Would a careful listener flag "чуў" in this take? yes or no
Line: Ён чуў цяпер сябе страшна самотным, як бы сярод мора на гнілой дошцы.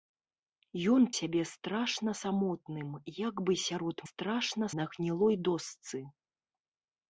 yes